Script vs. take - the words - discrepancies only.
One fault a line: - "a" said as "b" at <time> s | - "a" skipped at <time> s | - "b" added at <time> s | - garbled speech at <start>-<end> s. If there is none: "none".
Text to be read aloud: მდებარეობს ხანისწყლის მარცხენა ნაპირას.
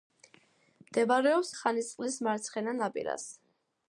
none